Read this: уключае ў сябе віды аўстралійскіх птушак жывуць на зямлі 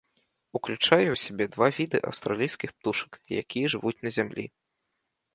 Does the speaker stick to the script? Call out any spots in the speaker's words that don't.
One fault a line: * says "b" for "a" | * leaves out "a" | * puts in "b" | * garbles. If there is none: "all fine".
* puts in "два"
* puts in "якія"